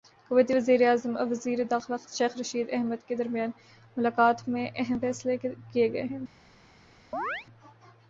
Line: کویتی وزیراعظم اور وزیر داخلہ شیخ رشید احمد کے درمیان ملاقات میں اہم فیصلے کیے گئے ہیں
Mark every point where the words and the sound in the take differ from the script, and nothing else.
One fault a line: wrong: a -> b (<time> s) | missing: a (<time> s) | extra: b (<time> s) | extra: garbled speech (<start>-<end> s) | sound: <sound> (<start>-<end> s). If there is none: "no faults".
sound: chirp (7.1-7.5 s)